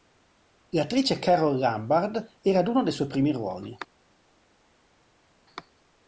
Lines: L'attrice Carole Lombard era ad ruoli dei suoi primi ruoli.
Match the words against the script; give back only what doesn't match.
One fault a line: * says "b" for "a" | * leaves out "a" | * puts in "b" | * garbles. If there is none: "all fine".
* says "uno" for "ruoli"